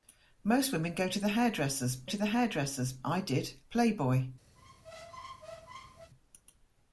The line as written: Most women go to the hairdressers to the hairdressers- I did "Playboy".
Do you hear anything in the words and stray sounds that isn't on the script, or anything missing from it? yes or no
yes